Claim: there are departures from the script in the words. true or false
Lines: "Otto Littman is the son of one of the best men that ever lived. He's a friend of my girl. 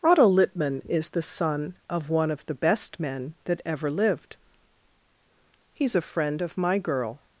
false